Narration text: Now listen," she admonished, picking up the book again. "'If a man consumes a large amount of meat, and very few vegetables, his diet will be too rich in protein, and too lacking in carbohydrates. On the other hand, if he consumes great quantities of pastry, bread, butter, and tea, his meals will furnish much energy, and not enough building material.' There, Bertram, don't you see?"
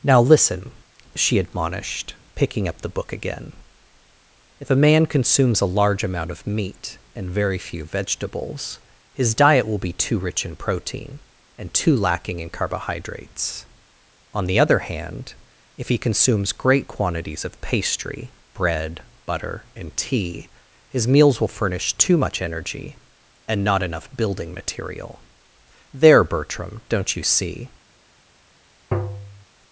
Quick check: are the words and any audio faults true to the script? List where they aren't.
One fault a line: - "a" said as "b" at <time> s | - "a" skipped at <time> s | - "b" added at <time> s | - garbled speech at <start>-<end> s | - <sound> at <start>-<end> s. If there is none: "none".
- "too" added at 21.9 s
- tap at 28.9-29.5 s